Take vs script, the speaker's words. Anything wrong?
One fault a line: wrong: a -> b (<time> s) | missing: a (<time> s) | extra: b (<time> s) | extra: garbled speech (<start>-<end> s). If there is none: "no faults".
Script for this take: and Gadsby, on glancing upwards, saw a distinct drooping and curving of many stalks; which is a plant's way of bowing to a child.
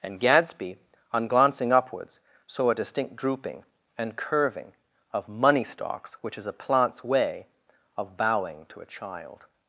wrong: many -> money (5.3 s)